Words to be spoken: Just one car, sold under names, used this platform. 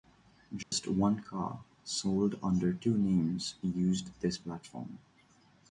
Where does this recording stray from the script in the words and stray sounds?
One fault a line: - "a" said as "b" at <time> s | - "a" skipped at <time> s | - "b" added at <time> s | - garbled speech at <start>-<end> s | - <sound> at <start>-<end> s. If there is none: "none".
- dropout at 0.6-0.7 s
- "two" added at 2.7 s